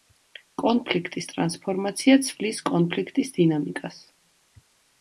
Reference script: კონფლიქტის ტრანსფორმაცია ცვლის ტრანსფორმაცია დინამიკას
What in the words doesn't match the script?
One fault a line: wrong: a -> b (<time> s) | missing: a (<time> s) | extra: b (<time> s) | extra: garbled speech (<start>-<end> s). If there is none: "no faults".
wrong: ტრანსფორმაცია -> კონფლიქტის (2.7 s)